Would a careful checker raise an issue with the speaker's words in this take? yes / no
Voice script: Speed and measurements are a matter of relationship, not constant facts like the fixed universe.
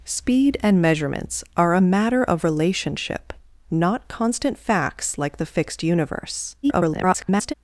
yes